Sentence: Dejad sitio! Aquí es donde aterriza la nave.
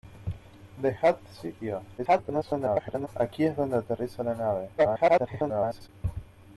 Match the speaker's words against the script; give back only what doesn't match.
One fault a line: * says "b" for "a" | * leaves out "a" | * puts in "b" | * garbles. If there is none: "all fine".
* garbles
* garbles